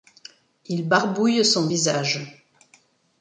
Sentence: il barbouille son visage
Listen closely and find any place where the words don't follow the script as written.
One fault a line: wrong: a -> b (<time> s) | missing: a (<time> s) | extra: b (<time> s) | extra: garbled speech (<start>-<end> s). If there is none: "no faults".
no faults